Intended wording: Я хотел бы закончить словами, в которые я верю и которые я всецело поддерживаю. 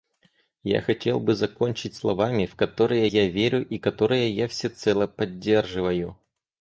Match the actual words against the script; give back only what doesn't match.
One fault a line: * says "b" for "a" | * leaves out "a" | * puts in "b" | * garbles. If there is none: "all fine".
all fine